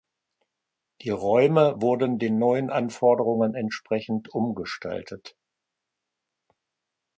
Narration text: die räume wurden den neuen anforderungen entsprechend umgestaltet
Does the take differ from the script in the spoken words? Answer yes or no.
no